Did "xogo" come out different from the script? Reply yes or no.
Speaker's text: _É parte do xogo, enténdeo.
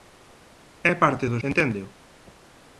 yes